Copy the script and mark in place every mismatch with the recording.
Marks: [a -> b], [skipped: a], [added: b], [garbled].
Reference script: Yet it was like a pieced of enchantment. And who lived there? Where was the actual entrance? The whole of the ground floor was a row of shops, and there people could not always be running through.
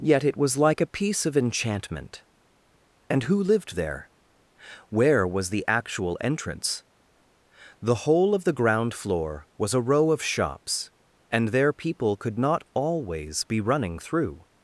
Yet it was like a [pieced -> piece] of enchantment. And who lived there? Where was the actual entrance? The whole of the ground floor was a row of shops, and there people could not always be running through.